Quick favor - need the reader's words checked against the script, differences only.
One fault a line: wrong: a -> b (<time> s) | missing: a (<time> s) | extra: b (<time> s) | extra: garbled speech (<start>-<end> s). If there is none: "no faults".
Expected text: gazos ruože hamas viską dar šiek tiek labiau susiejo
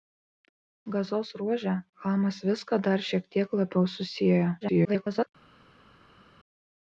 extra: garbled speech (4.6-5.3 s)